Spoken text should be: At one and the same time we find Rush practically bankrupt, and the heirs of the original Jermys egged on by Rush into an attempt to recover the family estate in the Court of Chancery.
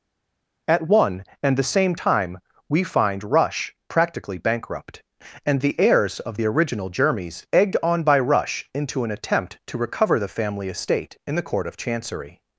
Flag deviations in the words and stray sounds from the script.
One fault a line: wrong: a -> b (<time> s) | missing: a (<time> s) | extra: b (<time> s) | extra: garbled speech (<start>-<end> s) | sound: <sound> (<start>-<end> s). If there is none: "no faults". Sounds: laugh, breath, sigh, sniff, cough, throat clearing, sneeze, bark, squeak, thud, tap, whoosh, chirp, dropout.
no faults